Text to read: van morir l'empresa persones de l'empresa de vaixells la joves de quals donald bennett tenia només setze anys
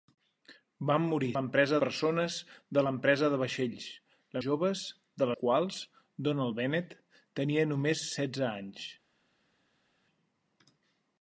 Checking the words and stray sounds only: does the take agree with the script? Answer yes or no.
yes